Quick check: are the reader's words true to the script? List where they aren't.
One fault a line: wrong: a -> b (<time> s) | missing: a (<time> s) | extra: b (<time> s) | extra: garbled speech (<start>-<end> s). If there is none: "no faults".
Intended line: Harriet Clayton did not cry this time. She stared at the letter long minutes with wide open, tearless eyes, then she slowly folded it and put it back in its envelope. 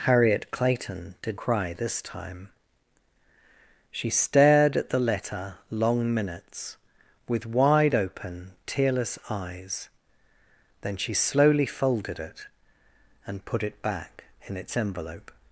missing: not (1.4 s)